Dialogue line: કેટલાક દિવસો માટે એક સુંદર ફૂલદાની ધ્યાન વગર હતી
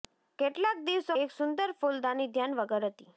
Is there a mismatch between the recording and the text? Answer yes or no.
yes